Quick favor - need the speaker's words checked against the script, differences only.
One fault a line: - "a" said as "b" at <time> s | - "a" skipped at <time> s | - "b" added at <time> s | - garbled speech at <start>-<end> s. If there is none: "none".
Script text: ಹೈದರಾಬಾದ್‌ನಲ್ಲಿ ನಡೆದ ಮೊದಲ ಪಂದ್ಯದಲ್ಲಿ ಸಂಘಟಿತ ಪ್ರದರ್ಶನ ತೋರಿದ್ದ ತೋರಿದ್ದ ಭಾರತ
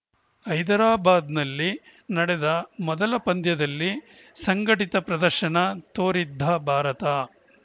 - "ತೋರಿದ್ದ" skipped at 6.4 s